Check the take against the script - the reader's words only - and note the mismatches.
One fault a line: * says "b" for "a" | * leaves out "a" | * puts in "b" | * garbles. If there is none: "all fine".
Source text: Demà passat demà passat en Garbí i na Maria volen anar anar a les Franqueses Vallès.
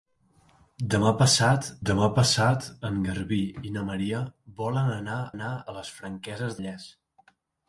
all fine